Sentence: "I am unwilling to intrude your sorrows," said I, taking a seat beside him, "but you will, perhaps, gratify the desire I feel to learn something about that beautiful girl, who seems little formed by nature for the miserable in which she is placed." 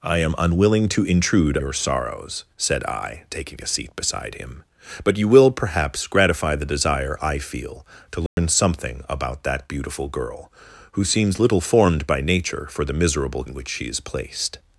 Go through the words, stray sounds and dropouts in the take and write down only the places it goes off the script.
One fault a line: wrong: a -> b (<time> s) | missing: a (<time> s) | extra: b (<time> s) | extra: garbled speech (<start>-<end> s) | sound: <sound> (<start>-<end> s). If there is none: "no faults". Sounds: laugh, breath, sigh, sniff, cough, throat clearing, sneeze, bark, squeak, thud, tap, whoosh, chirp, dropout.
sound: dropout (8.3-8.4 s)